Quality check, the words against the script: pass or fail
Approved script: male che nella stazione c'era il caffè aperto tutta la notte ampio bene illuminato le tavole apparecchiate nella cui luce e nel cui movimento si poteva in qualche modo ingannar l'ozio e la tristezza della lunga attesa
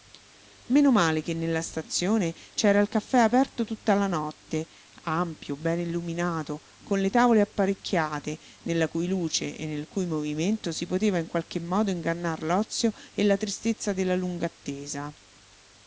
fail